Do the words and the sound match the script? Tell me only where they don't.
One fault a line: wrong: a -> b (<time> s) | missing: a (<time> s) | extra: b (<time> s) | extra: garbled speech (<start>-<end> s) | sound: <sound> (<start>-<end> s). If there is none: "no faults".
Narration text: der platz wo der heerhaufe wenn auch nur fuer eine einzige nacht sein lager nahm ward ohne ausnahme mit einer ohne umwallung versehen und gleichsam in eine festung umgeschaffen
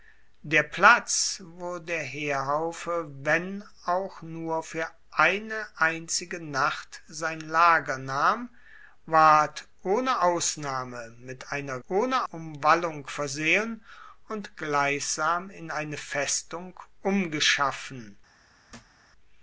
sound: thud (18.7-19.0 s)